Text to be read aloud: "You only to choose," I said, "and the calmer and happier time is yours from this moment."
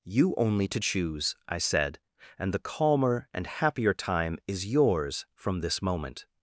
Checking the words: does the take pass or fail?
pass